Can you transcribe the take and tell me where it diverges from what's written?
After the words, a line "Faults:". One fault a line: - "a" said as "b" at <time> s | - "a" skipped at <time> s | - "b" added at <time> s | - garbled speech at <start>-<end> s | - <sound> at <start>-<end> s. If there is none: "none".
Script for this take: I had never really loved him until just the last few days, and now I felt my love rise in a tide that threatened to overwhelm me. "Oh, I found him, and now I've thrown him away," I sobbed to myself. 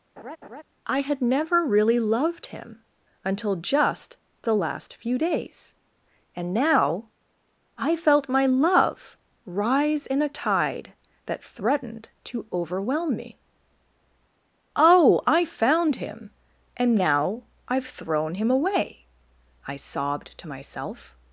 I had never really loved him until just the last few days, and now I felt my love rise in a tide that threatened to overwhelm me. "Oh, I found him, and now I've thrown him away," I sobbed to myself.
Faults:
- laugh at 0.2-0.6 s